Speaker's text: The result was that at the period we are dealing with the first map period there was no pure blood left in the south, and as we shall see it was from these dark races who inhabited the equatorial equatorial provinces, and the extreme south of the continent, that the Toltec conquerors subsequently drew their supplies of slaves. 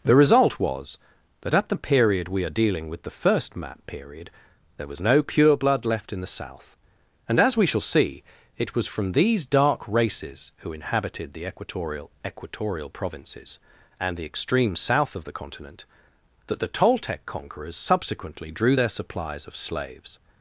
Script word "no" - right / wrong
right